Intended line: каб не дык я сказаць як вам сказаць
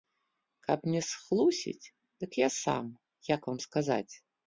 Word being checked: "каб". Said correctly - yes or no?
yes